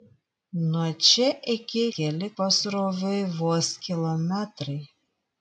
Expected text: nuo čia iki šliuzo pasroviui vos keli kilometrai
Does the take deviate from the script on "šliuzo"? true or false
true